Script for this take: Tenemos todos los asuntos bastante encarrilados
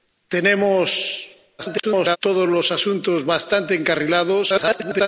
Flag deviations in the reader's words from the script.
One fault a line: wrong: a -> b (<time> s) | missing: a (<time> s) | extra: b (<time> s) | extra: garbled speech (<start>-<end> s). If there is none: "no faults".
extra: garbled speech (1.6-2.2 s)
extra: garbled speech (4.5-5.1 s)